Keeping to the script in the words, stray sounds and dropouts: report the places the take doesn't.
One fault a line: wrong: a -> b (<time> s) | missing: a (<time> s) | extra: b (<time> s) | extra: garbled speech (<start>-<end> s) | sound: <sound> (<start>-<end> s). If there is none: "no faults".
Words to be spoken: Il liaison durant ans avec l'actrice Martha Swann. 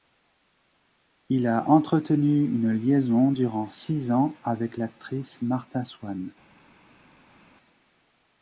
extra: a entretenu une (1.4 s)
extra: six (3.7 s)